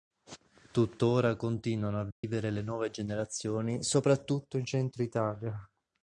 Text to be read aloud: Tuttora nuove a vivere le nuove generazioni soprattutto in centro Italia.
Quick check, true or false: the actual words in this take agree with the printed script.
false